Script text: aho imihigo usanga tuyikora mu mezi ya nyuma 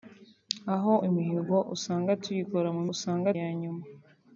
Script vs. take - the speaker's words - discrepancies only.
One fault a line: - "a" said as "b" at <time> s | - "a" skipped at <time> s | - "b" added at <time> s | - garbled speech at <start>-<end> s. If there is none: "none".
- "mezi" said as "usanga" at 2.9 s